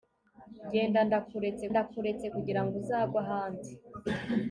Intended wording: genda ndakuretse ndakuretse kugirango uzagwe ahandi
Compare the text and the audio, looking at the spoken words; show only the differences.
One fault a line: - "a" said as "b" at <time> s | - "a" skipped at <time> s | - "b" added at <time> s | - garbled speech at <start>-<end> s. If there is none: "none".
none